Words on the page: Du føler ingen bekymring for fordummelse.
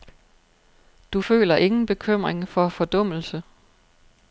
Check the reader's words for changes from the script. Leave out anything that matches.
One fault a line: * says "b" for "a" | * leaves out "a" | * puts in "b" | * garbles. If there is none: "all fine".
all fine